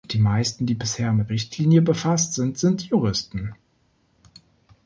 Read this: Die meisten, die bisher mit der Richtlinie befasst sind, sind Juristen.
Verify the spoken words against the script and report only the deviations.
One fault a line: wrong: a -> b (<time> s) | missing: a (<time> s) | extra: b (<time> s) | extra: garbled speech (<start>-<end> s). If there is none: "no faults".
missing: der (1.3 s)